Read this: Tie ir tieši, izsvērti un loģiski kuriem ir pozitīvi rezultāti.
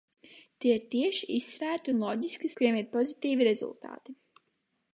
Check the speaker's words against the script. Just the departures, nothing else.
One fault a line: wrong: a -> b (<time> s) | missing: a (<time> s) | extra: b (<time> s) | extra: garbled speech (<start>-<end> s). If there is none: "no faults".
no faults